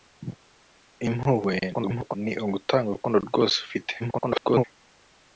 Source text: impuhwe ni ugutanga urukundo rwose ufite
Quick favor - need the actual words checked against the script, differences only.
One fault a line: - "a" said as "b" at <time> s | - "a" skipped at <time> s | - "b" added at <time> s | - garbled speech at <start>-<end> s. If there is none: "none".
- garbled speech at 1.7-2.2 s
- garbled speech at 4.0-4.6 s